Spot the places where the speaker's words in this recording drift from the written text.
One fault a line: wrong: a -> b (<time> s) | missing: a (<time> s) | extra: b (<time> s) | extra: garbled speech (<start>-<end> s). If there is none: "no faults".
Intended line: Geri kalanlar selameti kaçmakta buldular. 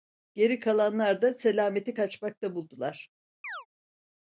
extra: da (1.2 s)